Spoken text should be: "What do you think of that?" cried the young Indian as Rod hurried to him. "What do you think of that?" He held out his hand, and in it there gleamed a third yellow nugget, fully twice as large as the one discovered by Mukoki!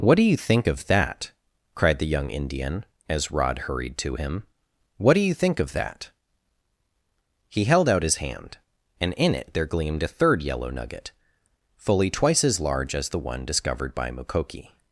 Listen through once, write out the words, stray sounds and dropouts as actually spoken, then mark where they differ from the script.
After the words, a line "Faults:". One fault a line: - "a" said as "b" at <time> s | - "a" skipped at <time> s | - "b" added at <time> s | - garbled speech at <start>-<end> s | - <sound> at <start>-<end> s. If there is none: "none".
"What do you think of that?" cried the young Indian as Rod hurried to him. "What do you think of that?" He held out his hand, and in it there gleamed a third yellow nugget, fully twice as large as the one discovered by Mukoki!
Faults:
none